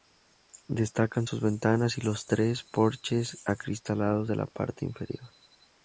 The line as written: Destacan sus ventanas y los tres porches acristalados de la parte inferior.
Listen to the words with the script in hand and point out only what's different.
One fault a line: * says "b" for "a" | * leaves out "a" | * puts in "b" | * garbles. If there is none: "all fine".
all fine